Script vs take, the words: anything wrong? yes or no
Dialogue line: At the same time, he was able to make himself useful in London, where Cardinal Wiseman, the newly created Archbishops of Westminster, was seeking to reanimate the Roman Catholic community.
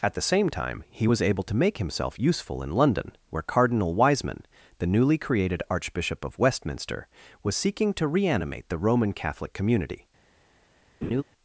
yes